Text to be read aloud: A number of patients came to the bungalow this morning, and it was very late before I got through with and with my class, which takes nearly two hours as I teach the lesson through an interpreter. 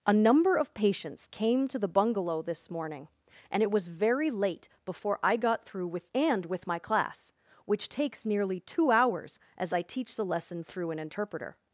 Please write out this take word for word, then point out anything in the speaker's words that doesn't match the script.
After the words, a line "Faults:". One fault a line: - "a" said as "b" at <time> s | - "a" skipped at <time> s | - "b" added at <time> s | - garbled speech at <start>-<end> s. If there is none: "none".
A number of patients came to the bungalow this morning, and it was very late before I got through with and with my class, which takes nearly two hours as I teach the lesson through an interpreter.
Faults:
none